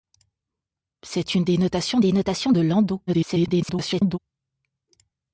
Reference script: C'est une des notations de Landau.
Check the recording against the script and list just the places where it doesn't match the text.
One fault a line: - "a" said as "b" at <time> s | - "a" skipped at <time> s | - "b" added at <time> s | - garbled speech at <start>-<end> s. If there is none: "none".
- "des notations" added at 2.0 s
- garbled speech at 3.1-4.2 s